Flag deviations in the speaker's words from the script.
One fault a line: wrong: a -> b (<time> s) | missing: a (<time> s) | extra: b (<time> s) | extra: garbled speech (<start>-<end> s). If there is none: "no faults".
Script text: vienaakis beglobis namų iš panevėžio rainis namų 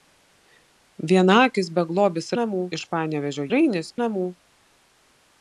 no faults